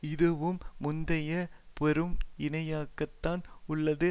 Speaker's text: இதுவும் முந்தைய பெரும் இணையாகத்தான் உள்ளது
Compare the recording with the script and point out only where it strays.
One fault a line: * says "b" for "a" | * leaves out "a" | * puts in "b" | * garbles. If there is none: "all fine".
all fine